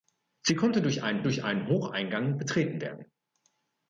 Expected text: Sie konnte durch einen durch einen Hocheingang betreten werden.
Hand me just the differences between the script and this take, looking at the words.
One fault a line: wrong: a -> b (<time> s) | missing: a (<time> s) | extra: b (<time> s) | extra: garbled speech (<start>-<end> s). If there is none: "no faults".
no faults